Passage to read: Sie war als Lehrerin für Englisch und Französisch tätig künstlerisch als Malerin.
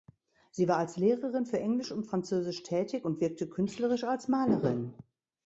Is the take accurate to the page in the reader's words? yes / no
no